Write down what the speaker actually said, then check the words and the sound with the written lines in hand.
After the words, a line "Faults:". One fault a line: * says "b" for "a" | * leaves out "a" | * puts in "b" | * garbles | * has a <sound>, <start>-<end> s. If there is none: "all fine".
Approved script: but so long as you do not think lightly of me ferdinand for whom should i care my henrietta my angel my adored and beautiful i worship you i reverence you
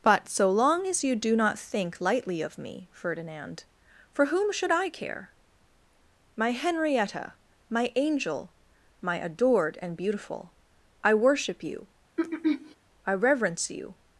but so long as you do not think lightly of me ferdinand for whom should i care my henrietta my angel my adored and beautiful i worship you i reverence you
Faults:
* has a throat clearing, 12.2-12.8 s